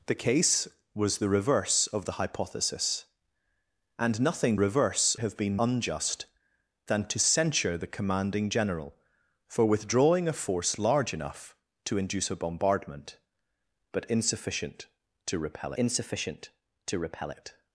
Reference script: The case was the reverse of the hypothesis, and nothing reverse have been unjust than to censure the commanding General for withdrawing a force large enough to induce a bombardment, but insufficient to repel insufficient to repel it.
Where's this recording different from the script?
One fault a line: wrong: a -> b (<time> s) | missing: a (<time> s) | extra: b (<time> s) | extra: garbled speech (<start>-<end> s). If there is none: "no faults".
no faults